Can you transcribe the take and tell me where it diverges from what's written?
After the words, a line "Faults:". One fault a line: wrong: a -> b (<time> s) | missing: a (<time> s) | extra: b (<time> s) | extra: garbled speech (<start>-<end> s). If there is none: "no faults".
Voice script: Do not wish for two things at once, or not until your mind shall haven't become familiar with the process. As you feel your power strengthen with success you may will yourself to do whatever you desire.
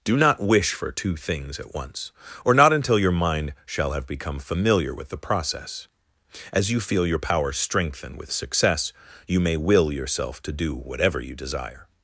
Do not wish for two things at once, or not until your mind shall have become familiar with the process. As you feel your power strengthen with success you may will yourself to do whatever you desire.
Faults:
wrong: haven't -> have (3.9 s)